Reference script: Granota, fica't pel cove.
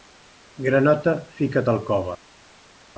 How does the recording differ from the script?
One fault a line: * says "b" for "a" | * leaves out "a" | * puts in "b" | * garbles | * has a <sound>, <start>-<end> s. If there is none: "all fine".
* says "al" for "pel"